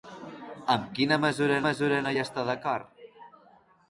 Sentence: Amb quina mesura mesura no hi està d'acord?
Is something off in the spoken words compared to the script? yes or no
no